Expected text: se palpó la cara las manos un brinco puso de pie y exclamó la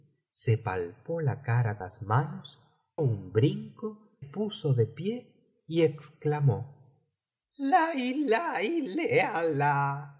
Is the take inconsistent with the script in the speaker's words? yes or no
no